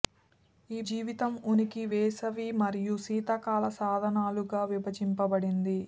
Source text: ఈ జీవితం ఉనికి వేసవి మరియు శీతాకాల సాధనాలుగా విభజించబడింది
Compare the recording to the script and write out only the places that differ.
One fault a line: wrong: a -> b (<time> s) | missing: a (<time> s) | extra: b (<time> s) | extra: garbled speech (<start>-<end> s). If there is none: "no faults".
no faults